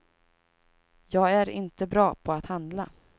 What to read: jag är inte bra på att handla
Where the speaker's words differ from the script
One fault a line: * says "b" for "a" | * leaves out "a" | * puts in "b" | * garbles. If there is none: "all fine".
all fine